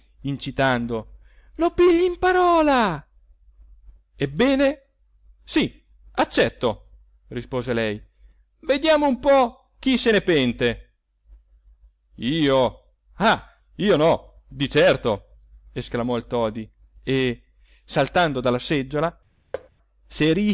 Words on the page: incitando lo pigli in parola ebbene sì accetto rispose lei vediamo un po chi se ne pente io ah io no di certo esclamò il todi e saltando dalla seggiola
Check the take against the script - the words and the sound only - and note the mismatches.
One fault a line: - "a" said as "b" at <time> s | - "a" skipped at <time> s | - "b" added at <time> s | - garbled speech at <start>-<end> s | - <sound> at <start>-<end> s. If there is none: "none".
- thud at 19.5-19.7 s